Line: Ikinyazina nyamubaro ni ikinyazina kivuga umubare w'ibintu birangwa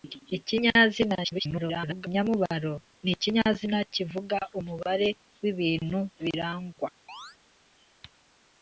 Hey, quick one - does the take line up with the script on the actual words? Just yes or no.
no